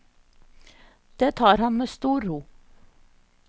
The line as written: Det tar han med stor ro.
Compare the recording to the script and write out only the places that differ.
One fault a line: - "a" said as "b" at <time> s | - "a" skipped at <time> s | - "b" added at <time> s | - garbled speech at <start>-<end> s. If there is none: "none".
none